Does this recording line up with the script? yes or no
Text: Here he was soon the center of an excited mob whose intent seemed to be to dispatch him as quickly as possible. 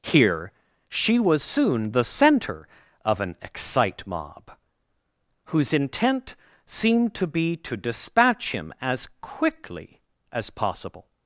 no